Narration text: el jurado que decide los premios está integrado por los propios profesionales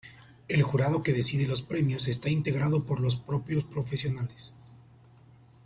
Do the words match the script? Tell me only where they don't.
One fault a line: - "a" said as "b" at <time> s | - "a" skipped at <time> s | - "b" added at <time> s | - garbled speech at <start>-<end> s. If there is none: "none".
none